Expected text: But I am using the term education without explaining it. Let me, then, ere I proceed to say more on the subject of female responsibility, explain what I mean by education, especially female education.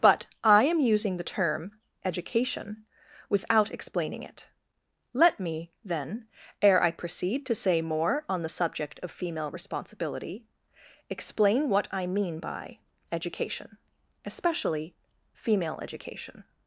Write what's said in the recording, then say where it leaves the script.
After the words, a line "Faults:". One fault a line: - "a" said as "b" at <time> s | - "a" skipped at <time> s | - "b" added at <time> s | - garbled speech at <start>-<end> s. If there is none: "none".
But I am using the term education without explaining it. Let me, then, ere I proceed to say more on the subject of female responsibility, explain what I mean by education, especially female education.
Faults:
none